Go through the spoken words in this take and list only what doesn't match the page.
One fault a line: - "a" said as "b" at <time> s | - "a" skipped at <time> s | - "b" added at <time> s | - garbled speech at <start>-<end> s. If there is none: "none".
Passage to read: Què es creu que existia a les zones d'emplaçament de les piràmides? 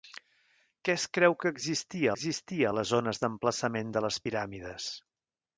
- "existia" added at 2.1 s